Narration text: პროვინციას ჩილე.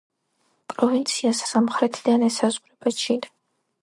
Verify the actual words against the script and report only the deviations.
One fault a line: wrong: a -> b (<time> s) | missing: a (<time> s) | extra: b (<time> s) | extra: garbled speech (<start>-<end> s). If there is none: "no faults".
extra: სამხრეთიდან ესაზღვრება (1.5 s)